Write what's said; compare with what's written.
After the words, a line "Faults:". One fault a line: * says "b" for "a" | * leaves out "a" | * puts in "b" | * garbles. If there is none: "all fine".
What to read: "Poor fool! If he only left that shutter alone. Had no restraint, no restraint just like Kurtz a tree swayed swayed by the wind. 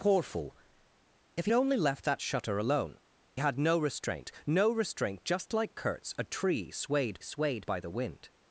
"Poor fool! If he only left that shutter alone. Had no restraint, no restraint just like Kurtz a tree swayed swayed by the wind.
Faults:
all fine